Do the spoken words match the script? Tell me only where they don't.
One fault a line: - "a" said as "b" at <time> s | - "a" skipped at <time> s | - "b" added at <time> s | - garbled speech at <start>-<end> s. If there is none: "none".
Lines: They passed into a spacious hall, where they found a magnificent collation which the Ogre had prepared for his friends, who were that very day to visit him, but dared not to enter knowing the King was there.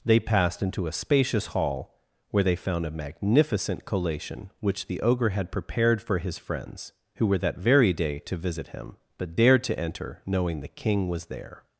- "not" skipped at 9.6 s